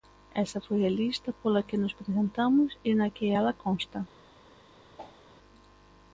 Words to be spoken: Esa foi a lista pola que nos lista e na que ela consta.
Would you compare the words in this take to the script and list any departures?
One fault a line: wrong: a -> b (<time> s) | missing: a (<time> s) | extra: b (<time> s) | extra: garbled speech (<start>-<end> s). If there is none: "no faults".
wrong: lista -> presentamos (2.0 s)